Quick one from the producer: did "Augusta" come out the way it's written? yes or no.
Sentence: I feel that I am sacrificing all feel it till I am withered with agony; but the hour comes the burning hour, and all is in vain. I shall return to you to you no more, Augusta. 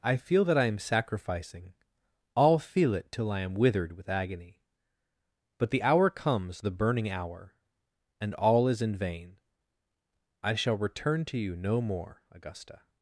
yes